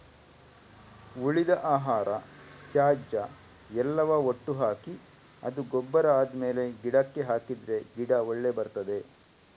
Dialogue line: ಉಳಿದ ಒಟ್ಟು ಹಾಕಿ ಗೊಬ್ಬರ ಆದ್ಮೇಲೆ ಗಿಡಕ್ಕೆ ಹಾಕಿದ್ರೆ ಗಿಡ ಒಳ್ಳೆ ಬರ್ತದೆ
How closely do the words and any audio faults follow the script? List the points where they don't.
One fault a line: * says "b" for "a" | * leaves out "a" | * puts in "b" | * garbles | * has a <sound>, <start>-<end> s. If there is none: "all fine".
* puts in "ಆಹಾರ ತ್ಯಾಜ್ಯ ಎಲ್ಲವ"
* puts in "ಅದು"